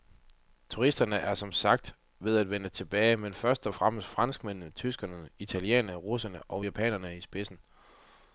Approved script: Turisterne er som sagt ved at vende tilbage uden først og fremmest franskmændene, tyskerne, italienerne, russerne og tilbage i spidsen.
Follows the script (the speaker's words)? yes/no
no